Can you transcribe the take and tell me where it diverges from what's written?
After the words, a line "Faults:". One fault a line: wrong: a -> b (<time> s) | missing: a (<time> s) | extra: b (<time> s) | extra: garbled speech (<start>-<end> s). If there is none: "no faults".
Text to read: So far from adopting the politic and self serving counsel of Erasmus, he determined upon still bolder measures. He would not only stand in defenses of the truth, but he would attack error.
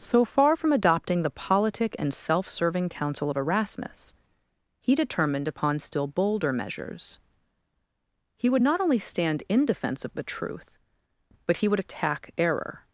So far from adopting the politic and self serving counsel of Erasmus, he determined upon still bolder measures. He would not only stand in defense of the truth, but he would attack error.
Faults:
wrong: defenses -> defense (9.6 s)